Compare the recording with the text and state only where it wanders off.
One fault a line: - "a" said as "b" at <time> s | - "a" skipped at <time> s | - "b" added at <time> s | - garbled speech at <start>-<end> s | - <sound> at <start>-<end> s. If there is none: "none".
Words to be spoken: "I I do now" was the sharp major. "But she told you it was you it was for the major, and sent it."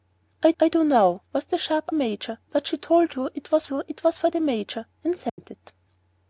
- dropout at 5.3-5.4 s